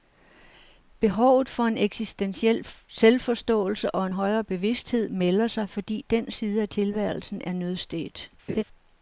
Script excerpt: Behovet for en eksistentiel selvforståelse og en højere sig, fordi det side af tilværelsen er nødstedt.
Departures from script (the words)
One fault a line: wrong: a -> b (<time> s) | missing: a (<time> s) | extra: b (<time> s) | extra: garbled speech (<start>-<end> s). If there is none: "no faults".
extra: bevidsthed melder (4.4 s)
wrong: det -> den (6.1 s)